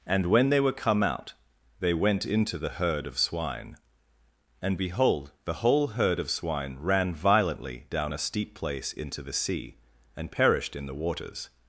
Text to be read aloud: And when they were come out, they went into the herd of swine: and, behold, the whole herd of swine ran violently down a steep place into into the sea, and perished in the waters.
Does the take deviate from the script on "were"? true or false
false